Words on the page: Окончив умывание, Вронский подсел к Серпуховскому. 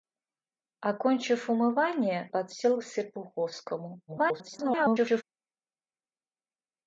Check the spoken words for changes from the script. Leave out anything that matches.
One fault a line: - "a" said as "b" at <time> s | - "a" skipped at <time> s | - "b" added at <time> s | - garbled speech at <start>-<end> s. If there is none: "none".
- "Вронский" skipped at 2.3 s
- garbled speech at 4.1-5.2 s